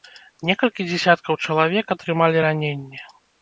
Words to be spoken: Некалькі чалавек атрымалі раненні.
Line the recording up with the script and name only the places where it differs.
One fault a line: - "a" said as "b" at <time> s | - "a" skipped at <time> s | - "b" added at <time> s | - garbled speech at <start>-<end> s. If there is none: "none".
- "дзесяткаў" added at 0.9 s